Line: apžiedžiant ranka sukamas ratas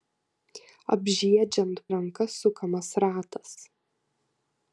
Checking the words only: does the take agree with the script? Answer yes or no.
yes